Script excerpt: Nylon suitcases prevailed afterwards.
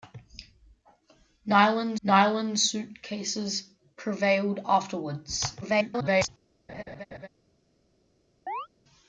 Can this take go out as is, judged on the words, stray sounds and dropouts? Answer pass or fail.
fail